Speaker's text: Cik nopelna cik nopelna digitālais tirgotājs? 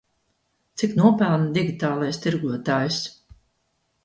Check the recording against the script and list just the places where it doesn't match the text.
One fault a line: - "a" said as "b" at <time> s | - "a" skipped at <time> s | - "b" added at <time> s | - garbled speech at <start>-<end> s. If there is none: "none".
- "cik nopelna" skipped at 1.5 s